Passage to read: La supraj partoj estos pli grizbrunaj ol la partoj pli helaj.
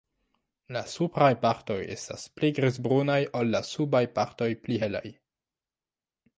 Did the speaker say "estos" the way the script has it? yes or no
no